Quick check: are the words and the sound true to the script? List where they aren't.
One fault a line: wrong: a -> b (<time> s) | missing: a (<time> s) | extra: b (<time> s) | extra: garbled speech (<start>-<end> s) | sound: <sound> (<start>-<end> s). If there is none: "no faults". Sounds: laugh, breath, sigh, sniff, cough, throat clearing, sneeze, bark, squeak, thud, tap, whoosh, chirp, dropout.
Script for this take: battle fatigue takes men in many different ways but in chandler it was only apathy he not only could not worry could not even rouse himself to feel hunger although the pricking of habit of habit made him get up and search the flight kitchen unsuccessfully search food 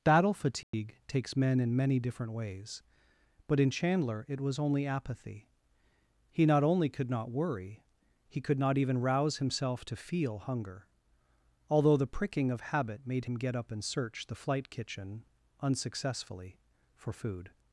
sound: dropout (0.6-0.7 s)
extra: he (8.3 s)
missing: of habit (13.0 s)
wrong: search -> for (16.9 s)